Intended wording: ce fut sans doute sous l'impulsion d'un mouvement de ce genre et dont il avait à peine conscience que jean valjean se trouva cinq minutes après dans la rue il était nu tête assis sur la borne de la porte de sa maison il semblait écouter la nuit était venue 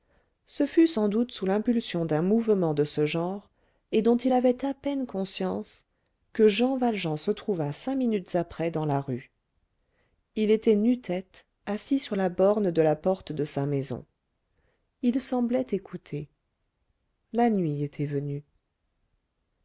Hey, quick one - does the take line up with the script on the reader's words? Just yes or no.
yes